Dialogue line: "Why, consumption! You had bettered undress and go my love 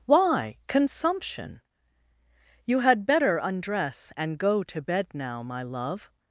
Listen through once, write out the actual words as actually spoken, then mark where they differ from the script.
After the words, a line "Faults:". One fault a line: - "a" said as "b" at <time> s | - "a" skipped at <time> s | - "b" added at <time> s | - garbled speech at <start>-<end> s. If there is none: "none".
"Why, consumption! You had better undress and go to bed now, my love
Faults:
- "bettered" said as "better" at 3.0 s
- "to bed now" added at 4.6 s